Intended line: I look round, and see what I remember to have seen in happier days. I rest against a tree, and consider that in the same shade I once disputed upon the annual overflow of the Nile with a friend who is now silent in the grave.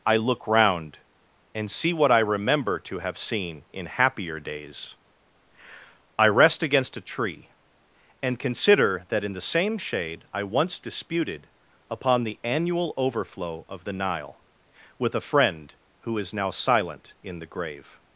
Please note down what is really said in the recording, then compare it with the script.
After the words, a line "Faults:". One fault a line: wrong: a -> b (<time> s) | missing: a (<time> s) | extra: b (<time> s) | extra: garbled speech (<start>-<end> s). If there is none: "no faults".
I look round, and see what I remember to have seen in happier days. I rest against a tree, and consider that in the same shade I once disputed upon the annual overflow of the Nile with a friend who is now silent in the grave.
Faults:
no faults